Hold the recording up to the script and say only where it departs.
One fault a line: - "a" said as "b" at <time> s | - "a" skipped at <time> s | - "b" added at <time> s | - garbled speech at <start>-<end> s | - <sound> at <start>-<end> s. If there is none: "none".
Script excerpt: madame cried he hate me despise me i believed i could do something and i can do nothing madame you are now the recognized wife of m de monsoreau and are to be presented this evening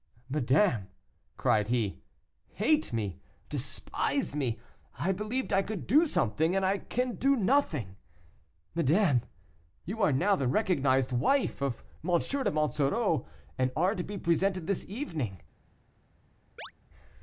- chirp at 16.6-16.7 s